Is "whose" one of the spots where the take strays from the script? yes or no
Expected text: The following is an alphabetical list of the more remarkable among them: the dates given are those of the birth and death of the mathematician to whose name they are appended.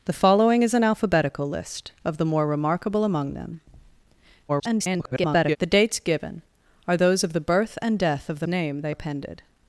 yes